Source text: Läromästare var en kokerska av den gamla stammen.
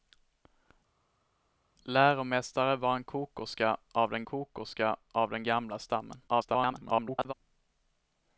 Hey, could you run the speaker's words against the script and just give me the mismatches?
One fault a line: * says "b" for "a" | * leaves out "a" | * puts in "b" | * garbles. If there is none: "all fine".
* puts in "kokerska av den"
* garbles